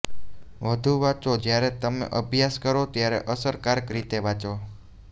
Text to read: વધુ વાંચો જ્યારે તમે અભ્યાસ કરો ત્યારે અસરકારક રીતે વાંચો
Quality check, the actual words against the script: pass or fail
pass